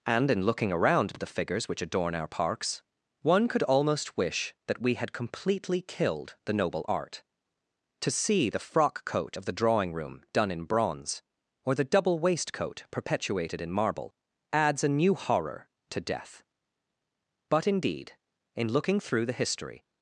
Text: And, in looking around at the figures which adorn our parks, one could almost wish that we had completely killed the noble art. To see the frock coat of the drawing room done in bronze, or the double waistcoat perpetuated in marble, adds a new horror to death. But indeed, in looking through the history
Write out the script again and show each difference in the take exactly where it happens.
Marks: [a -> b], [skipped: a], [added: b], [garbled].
And, in looking around at the figures which adorn our parks, one could almost wish that we had completely killed the noble art. To see the frock coat of the drawing room done in bronze, or the double waistcoat perpetuated in marble, adds a new horror to death. But indeed, in looking through the history